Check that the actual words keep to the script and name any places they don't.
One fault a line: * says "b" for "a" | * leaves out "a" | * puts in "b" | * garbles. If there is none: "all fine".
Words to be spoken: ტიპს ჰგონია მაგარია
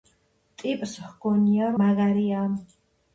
all fine